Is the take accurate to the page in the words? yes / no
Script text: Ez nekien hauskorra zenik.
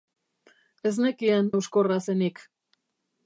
yes